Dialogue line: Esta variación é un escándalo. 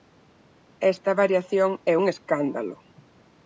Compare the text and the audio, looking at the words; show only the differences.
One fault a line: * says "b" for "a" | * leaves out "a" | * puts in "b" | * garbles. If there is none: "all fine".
all fine